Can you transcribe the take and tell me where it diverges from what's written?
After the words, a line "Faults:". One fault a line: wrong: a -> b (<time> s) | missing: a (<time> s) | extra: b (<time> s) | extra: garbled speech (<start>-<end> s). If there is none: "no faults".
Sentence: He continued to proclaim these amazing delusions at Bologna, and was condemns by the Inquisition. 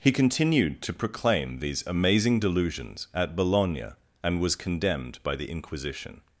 He continued to proclaim these amazing delusions at Bologna, and was condemned by the Inquisition.
Faults:
wrong: condemns -> condemned (4.5 s)